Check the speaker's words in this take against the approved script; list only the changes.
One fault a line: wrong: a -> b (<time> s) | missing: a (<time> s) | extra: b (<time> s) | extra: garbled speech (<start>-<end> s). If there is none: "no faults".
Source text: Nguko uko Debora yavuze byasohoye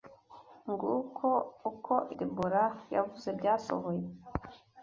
no faults